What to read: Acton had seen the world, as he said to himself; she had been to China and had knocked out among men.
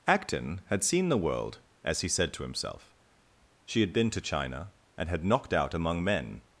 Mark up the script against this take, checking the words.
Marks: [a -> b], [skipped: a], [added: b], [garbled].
Acton had seen the world, as he said to himself; she had been to China and had knocked out among men.